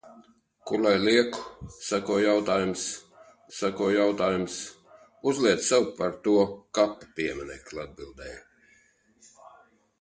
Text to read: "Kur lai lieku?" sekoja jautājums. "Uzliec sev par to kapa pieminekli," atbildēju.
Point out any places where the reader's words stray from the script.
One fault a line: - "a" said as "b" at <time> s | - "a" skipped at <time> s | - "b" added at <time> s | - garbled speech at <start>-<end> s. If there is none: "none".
- "sekoja jautājums" added at 3.6 s